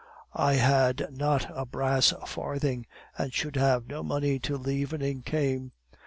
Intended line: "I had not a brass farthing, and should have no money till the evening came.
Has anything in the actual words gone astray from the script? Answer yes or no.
no